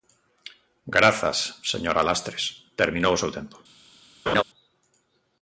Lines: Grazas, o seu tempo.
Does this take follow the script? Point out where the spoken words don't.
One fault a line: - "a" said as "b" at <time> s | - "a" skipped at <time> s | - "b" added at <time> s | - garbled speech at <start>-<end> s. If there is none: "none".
- "señora Lastres terminou" added at 1.7 s